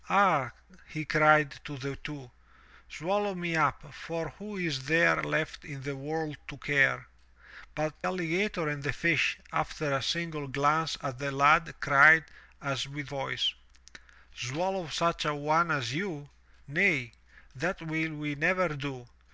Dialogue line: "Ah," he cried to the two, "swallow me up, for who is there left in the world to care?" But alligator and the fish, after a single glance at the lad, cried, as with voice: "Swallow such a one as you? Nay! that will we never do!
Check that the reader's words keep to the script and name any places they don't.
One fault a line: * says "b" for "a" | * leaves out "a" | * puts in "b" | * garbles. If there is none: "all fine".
all fine